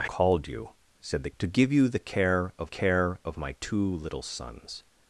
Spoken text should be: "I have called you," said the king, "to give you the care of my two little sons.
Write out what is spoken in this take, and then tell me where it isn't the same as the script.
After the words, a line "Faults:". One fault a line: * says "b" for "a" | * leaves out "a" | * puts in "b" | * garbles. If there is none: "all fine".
"I called you," said the "to give you the care of care of my two little sons.
Faults:
* leaves out "have"
* leaves out "king"
* puts in "care of"